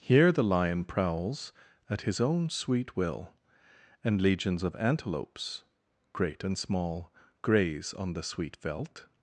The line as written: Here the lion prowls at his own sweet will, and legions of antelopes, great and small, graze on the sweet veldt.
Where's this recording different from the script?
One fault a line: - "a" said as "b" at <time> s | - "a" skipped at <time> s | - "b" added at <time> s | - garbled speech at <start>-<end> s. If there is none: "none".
none